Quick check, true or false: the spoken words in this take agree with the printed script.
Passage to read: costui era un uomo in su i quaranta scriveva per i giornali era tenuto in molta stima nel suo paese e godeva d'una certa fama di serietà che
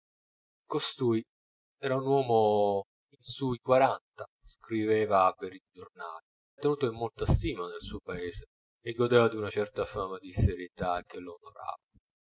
false